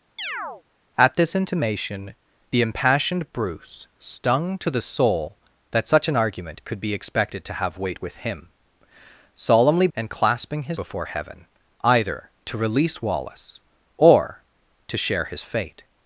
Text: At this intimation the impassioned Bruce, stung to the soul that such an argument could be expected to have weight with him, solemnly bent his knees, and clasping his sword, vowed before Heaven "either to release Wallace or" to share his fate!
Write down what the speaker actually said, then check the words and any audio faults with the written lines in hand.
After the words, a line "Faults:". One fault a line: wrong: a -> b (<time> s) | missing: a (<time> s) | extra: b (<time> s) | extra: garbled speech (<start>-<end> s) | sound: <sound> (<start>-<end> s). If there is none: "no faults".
At this intimation the impassioned Bruce, stung to the soul that such an argument could be expected to have weight with him, solemnly and clasping his before Heaven "either to release Wallace or" to share his fate!
Faults:
sound: chirp (0.2-0.6 s)
missing: bent his knees (9.9 s)
missing: sword vowed (10.8 s)